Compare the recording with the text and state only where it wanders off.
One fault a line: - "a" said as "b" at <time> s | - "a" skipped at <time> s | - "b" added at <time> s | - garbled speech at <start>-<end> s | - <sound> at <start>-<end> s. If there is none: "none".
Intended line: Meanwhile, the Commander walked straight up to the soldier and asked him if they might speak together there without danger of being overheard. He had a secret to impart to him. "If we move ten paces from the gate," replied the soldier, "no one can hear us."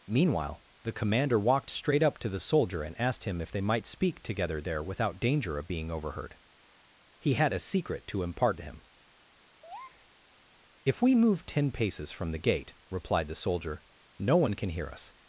- breath at 9.6-10.1 s